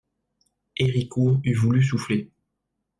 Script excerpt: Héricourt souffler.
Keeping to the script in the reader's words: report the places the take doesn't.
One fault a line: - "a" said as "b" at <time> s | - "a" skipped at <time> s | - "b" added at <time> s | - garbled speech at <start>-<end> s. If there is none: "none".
- "eût voulu" added at 1.4 s